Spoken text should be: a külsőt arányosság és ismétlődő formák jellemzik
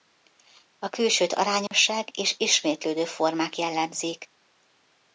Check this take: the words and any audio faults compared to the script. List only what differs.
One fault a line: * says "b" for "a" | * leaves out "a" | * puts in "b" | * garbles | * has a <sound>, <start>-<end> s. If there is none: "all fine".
* has a dropout, 1.7-1.7 s